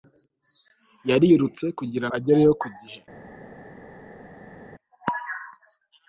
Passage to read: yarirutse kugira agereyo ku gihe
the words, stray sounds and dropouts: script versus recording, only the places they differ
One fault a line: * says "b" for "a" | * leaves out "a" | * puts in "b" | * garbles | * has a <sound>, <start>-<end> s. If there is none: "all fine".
all fine